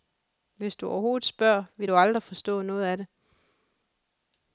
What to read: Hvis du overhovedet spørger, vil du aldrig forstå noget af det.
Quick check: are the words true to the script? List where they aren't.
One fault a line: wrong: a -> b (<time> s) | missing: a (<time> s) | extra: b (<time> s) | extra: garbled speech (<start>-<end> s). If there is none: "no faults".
no faults